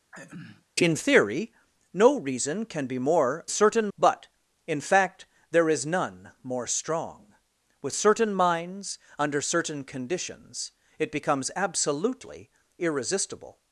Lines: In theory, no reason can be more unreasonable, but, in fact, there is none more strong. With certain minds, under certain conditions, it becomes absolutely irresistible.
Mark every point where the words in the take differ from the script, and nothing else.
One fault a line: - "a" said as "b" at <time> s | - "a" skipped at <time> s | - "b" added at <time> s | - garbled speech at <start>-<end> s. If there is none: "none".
- "unreasonable" said as "certain" at 3.5 s